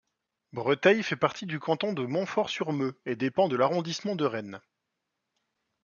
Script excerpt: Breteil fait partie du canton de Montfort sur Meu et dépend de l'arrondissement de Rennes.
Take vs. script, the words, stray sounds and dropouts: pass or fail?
pass